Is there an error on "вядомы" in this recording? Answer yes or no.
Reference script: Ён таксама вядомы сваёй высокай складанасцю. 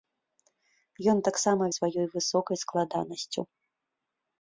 yes